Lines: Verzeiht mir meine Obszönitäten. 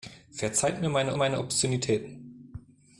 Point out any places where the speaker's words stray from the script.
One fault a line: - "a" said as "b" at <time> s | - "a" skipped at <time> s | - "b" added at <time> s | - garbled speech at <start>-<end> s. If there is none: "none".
- "meine" added at 1.1 s